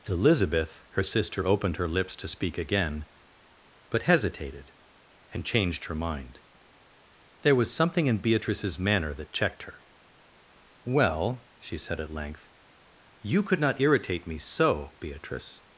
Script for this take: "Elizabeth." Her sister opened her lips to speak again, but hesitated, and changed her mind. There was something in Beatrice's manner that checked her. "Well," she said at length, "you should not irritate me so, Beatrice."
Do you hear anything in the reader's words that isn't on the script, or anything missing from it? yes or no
yes